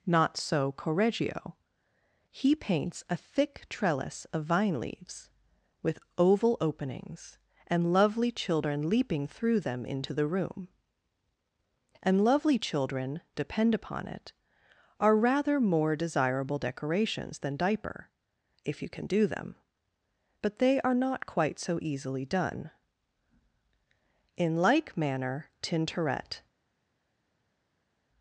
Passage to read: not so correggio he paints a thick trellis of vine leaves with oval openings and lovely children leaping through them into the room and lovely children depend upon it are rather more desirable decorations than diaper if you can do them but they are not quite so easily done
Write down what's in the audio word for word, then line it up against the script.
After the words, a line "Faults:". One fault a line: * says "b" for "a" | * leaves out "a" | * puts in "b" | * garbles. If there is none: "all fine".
not so correggio he paints a thick trellis of vine leaves with oval openings and lovely children leaping through them into the room and lovely children depend upon it are rather more desirable decorations than diaper if you can do them but they are not quite so easily done in like manner tintoret
Faults:
* puts in "in like manner tintoret"